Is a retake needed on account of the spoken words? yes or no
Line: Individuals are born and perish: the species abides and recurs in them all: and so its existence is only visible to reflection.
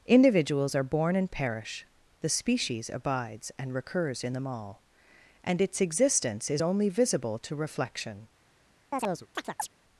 yes